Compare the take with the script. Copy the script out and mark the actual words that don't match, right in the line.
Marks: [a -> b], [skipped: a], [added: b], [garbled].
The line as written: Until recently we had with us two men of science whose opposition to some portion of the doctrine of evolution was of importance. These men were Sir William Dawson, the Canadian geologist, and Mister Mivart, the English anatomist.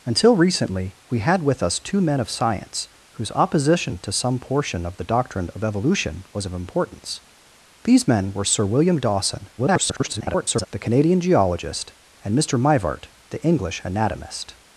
Until recently we had with us two men of science whose opposition to some portion of the doctrine of evolution was of importance. These men were Sir William Dawson, [garbled] the Canadian geologist, and Mister Mivart, the English anatomist.